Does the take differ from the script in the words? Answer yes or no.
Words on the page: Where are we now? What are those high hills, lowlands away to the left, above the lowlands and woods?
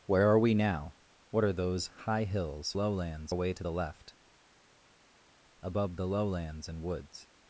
no